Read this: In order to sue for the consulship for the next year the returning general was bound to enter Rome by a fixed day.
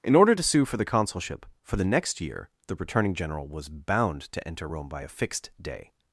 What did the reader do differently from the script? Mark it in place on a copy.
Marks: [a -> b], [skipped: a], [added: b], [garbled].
In order to sue for the consulship for the next year the returning general was bound to enter Rome by a fixed day.